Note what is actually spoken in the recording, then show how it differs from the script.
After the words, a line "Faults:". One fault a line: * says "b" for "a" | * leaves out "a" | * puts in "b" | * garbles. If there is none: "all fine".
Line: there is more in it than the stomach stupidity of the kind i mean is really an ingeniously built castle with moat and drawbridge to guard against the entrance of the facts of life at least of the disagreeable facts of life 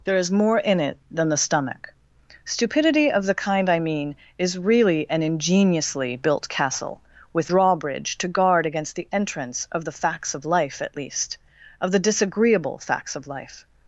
there is more in it than the stomach stupidity of the kind i mean is really an ingeniously built castle with drawbridge to guard against the entrance of the facts of life at least of the disagreeable facts of life
Faults:
* leaves out "moat and"